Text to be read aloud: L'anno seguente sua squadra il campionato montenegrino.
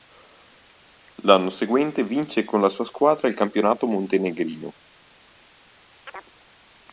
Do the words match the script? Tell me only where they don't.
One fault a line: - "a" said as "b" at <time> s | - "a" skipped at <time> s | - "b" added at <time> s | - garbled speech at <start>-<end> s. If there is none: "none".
- "vince con la" added at 2.0 s